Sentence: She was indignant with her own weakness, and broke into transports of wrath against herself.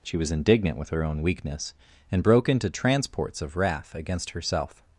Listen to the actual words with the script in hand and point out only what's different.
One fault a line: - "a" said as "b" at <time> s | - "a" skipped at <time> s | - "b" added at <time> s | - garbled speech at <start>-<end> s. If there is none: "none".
none